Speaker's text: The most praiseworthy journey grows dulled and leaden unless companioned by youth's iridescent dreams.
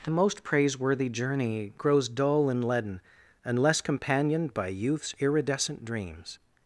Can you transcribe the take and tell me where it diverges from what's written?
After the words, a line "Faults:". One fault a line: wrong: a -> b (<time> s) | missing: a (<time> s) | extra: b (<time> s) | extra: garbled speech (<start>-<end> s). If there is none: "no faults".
The most praiseworthy journey grows dull and leaden unless companioned by youth's iridescent dreams.
Faults:
wrong: dulled -> dull (2.1 s)